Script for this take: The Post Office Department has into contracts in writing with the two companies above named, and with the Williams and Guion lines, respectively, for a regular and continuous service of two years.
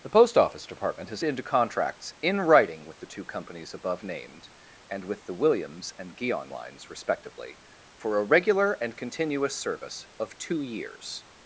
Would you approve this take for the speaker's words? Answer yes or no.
yes